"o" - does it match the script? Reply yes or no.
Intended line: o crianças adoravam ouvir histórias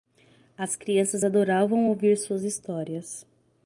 no